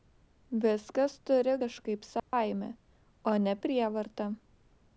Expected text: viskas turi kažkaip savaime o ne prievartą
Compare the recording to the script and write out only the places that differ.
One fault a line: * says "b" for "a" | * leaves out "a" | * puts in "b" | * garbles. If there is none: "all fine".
all fine